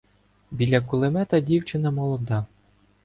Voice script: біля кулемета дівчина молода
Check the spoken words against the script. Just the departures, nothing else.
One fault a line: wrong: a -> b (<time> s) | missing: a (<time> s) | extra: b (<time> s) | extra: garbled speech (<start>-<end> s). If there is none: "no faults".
no faults